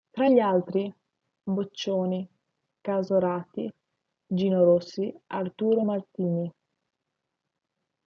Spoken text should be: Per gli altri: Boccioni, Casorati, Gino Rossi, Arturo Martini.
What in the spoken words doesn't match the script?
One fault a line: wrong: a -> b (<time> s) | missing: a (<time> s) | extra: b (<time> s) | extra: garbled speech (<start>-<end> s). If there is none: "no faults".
wrong: Per -> Tra (0.1 s)